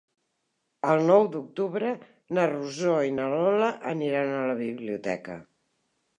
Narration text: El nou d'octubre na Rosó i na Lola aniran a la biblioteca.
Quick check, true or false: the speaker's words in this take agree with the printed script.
true